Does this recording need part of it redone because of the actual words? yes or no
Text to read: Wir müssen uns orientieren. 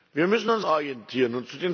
no